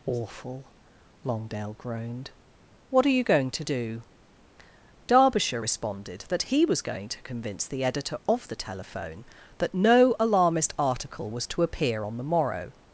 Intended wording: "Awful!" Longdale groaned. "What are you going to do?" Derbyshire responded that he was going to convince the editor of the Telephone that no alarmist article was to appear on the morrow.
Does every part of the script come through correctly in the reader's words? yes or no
yes